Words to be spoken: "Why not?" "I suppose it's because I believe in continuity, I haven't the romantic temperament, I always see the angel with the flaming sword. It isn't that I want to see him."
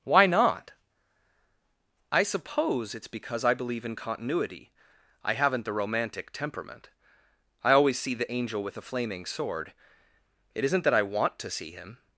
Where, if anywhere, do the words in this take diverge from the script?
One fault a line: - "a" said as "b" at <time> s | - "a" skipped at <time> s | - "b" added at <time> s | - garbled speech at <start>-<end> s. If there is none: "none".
- "the" said as "a" at 8.8 s